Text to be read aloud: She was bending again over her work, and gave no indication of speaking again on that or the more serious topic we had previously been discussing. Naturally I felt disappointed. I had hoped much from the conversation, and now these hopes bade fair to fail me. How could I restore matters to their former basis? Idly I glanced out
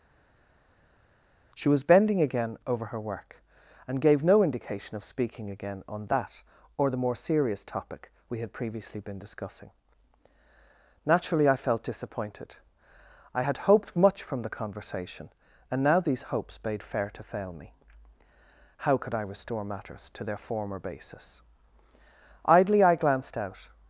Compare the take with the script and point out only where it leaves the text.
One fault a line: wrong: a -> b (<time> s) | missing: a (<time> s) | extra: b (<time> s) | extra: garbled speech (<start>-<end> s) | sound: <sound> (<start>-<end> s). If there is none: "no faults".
no faults